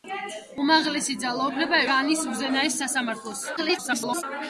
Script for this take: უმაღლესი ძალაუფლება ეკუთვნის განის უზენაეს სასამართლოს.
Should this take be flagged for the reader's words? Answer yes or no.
yes